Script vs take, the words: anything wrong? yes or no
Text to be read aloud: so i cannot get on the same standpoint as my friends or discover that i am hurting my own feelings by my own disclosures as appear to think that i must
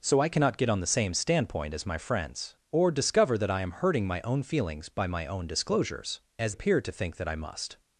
no